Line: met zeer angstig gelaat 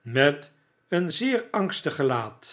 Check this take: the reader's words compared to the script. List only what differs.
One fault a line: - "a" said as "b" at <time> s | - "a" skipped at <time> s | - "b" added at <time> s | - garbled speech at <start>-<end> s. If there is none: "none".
- "een" added at 0.9 s